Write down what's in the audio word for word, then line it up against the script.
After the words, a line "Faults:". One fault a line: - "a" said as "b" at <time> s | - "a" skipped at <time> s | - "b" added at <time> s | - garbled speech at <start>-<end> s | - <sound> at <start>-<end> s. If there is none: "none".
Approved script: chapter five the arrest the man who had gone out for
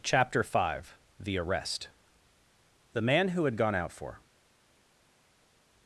chapter five the arrest the man who had gone out for
Faults:
none